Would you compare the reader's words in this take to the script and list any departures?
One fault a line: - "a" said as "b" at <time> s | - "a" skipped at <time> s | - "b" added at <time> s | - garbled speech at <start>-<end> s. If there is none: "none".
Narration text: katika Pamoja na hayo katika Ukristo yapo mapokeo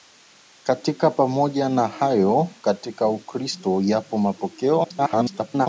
- garbled speech at 4.8-5.7 s